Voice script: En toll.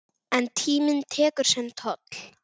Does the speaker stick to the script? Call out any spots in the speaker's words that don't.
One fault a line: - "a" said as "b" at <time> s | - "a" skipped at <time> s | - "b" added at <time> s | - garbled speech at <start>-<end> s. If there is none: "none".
- "tíminn tekur sinn" added at 0.6 s